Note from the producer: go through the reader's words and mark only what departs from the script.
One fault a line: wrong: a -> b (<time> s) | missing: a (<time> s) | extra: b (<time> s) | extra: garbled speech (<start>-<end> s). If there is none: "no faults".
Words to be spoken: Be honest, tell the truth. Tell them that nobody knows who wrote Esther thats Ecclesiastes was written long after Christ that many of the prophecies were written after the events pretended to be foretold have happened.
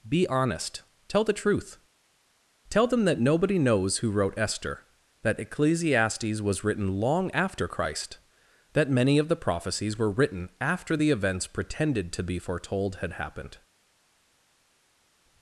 wrong: thats -> that (5.2 s)
wrong: have -> had (13.0 s)